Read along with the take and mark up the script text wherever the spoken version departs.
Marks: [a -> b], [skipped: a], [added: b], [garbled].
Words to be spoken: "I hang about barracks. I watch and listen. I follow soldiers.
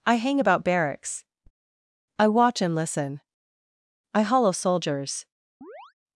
"I hang about barracks. I watch and listen. I [follow -> hollow] soldiers.